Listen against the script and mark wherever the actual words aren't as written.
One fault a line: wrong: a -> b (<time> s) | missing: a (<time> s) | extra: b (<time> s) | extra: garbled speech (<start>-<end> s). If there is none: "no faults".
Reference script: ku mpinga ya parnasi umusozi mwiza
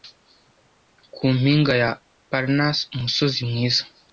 no faults